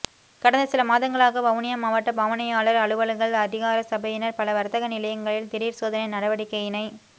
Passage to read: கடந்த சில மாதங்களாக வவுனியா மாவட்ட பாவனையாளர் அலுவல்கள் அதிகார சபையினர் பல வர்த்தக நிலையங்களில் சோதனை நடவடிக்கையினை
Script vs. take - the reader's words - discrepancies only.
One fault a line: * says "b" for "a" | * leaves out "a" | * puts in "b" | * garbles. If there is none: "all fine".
* puts in "திடீர்"